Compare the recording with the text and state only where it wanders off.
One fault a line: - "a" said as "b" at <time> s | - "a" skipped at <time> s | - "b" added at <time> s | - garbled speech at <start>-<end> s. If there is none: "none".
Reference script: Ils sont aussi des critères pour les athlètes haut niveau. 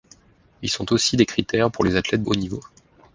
none